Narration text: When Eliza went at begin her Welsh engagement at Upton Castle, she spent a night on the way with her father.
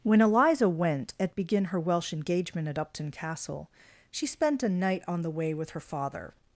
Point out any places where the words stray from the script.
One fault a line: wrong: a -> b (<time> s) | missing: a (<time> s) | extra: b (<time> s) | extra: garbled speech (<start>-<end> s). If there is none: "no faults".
no faults